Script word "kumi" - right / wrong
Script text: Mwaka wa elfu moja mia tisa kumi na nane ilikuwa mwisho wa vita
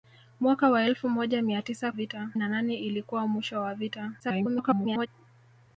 wrong